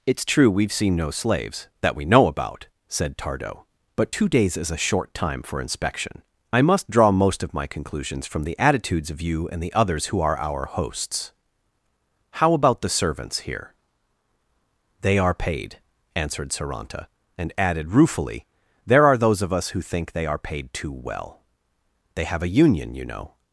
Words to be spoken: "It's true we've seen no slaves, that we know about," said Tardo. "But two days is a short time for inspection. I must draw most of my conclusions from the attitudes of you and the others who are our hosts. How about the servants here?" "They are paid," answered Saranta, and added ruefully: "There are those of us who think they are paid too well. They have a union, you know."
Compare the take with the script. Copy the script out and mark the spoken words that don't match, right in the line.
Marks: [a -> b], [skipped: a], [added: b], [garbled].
"It's true we've seen no slaves, that we know about," said Tardo. "But two days is a short time for inspection. I must draw most of my conclusions from the attitudes of you and the others who are our hosts. How about the servants here?" "They are paid," answered Saranta, and added ruefully: "There are those of us who think they are paid too well. They have a union, you know."